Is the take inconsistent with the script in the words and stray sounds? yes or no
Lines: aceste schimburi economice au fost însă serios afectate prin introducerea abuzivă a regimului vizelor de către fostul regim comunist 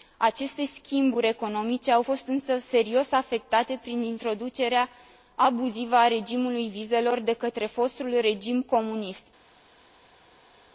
no